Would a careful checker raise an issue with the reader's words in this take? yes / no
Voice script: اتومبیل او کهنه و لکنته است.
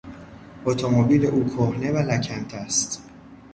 no